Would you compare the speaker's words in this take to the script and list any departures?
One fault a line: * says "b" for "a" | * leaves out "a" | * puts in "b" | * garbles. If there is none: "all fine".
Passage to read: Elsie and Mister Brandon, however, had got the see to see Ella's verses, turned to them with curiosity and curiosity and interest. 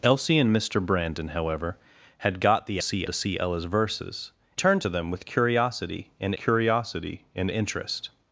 all fine